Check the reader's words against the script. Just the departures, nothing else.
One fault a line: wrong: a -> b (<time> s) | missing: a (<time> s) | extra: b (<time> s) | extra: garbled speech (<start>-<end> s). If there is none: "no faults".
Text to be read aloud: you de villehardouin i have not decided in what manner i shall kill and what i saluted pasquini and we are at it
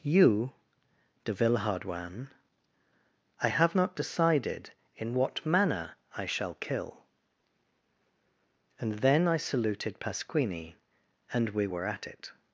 wrong: what -> then (9.0 s)
wrong: are -> were (11.7 s)